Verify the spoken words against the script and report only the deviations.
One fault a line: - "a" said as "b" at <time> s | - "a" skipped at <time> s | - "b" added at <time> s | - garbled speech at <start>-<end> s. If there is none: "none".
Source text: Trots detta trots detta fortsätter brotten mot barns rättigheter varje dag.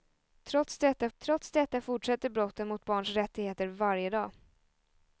none